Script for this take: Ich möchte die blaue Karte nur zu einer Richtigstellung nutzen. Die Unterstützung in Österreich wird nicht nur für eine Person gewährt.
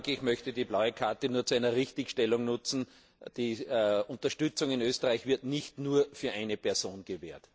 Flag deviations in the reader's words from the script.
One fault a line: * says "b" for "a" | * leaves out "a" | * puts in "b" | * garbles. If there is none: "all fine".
all fine